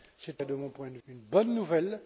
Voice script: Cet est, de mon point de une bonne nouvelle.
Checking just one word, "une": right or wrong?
right